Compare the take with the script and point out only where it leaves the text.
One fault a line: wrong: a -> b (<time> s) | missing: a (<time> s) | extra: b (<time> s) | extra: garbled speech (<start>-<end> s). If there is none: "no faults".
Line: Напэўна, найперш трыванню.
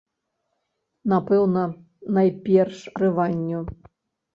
no faults